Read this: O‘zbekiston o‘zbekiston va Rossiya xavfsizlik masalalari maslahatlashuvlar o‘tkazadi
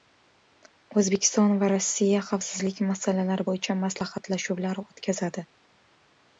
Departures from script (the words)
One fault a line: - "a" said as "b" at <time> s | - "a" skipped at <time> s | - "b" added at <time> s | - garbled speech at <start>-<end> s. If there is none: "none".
- "o‘zbekiston" skipped at 1.5 s
- "bo‘yicha" added at 3.5 s